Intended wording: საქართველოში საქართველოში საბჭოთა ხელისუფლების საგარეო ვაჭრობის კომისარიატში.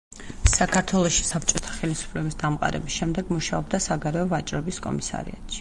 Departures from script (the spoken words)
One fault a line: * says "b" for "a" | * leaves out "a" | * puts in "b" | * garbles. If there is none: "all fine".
* leaves out "საქართველოში"
* puts in "დამყარების შემდეგ მუშაობდა"